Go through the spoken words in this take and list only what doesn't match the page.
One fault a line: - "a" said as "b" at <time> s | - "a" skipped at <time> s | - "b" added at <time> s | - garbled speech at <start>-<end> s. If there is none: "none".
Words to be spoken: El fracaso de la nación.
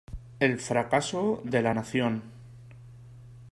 none